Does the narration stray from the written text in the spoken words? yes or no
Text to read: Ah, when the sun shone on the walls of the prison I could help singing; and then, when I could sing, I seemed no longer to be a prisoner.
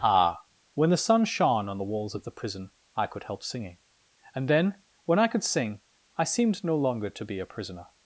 no